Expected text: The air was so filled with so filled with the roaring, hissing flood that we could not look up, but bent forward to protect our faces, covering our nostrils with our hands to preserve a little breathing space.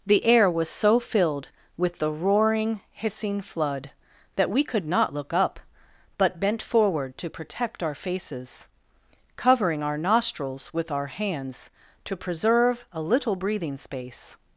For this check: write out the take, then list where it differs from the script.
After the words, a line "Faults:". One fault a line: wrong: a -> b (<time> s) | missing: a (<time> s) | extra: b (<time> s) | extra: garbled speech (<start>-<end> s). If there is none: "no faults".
The air was so filled with the roaring, hissing flood that we could not look up, but bent forward to protect our faces, covering our nostrils with our hands to preserve a little breathing space.
Faults:
missing: so filled with (2.0 s)